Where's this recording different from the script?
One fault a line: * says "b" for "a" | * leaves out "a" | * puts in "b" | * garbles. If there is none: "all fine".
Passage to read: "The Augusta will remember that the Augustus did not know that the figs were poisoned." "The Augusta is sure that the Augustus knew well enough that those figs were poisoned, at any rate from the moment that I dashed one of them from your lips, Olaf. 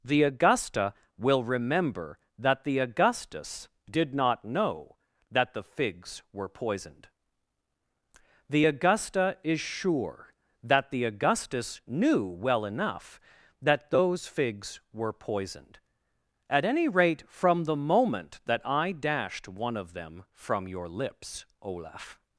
all fine